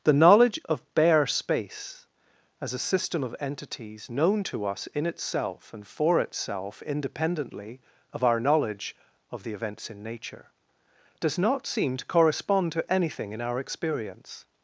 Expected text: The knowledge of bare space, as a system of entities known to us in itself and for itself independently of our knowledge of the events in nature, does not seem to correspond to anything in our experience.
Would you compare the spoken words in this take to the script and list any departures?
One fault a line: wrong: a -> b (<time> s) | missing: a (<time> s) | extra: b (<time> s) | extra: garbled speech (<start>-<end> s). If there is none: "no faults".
no faults